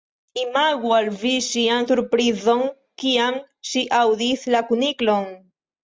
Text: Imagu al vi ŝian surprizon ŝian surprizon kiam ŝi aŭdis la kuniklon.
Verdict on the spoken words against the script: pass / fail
fail